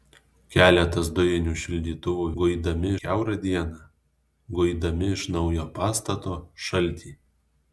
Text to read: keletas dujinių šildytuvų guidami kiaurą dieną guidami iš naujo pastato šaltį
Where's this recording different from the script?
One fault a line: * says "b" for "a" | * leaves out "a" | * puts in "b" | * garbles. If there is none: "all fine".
all fine